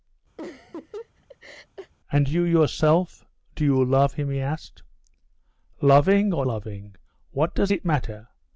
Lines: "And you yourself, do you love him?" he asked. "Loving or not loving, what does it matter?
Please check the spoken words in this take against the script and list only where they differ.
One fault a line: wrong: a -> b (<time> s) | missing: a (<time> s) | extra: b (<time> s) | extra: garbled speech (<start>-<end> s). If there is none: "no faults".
missing: not (6.5 s)